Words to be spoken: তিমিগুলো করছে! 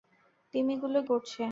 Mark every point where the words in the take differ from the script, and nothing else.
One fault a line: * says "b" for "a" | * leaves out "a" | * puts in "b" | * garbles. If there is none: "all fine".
all fine